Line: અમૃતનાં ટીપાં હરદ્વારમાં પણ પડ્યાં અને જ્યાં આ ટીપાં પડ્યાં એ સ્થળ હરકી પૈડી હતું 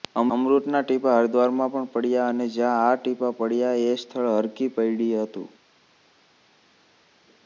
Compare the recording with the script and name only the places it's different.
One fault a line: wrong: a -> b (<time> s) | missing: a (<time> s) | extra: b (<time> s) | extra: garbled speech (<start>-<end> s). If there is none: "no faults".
no faults